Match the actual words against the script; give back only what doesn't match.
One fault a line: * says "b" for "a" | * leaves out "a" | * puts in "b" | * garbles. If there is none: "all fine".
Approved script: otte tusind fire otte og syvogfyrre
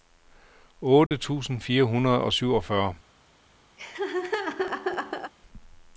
* says "hundrede" for "otte"